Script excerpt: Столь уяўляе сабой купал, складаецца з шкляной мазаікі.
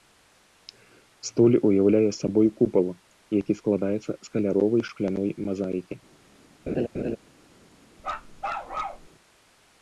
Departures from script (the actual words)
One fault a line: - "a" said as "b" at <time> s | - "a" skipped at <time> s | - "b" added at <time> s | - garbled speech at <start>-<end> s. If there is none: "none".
- "які" added at 3.4 s
- "каляровай" added at 4.4 s